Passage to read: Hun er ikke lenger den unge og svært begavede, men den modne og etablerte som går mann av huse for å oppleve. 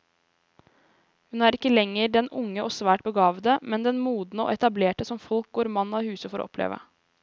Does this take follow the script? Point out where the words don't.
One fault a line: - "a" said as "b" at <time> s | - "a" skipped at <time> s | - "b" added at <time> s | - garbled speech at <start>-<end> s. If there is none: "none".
- "folk" added at 5.3 s